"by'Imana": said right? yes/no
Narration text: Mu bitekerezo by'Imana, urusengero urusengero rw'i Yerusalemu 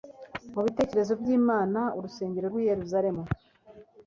yes